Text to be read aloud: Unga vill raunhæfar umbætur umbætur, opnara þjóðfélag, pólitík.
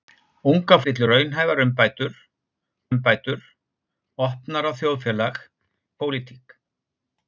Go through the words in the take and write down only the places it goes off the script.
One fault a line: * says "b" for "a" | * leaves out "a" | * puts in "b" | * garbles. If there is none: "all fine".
all fine